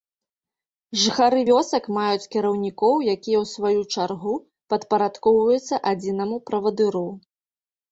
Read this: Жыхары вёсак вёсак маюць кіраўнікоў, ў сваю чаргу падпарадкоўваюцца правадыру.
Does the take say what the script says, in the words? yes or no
no